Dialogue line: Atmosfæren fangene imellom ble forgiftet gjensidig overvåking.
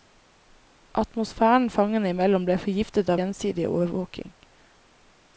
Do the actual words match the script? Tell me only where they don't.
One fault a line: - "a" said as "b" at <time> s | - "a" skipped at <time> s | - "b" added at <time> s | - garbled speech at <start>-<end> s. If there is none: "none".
none